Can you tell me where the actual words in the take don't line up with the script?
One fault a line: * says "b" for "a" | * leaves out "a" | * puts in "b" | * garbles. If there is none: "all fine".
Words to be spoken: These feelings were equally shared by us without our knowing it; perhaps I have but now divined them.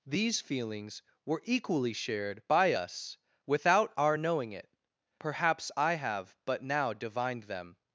all fine